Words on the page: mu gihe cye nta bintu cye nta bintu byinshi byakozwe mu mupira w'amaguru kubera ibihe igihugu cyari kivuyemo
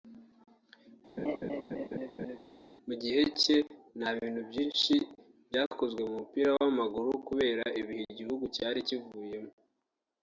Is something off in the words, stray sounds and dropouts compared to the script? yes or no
yes